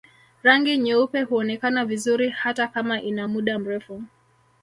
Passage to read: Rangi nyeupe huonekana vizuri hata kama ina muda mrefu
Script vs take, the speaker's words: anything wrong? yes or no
no